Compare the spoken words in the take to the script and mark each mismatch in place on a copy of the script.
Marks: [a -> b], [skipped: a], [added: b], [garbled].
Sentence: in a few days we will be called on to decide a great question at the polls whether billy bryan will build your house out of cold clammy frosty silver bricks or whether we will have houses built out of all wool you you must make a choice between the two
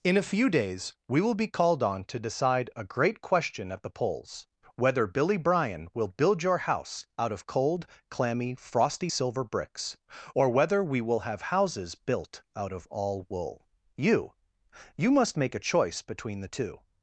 in a few days we will be called on to decide a great question at the polls whether billy bryan will build your house out of cold clammy frosty silver bricks or whether we will have houses built out of all wool you you must make a choice between the two